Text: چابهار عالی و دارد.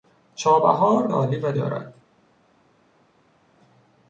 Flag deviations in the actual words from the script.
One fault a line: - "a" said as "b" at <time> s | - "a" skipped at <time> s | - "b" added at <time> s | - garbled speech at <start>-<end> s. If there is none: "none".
none